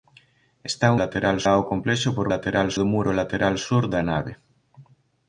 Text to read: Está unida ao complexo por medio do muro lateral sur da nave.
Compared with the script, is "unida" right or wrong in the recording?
wrong